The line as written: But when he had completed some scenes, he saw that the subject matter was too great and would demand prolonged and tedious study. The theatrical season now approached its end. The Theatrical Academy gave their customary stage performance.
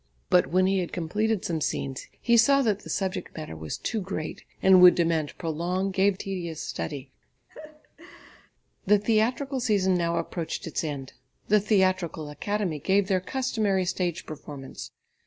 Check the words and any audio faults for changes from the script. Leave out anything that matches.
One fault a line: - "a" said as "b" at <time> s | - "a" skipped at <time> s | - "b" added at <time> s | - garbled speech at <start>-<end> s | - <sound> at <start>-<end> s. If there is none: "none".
- "and" said as "gave" at 5.9 s
- laugh at 7.5-8.5 s